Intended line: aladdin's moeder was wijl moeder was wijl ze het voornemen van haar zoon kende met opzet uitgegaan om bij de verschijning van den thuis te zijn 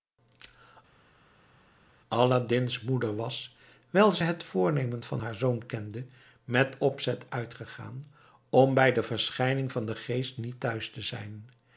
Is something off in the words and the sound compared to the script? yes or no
yes